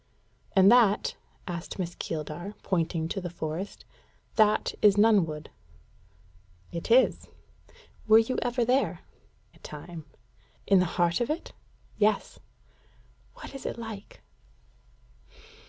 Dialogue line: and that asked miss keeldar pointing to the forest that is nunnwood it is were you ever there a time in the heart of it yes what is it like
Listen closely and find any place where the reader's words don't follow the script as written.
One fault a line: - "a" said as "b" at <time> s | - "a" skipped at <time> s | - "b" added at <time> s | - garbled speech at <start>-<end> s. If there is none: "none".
none